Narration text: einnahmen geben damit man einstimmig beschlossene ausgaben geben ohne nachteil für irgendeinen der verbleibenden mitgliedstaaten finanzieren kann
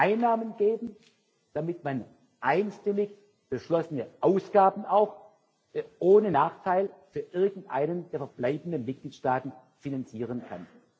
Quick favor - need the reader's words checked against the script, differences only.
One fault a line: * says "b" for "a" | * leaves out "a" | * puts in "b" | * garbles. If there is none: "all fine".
* says "auch" for "geben"